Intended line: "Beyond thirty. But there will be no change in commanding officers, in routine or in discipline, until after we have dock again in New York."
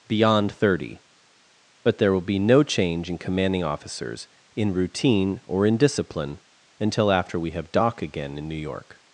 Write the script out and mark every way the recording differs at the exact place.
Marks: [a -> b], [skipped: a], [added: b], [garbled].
"Beyond thirty. But there will be no change in commanding officers, in routine or in discipline, until after we have dock again in New York."